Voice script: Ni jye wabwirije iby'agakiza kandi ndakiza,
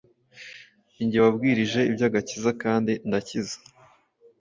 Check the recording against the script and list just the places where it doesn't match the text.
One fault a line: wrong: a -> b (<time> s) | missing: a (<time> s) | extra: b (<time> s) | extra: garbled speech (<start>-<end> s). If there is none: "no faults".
no faults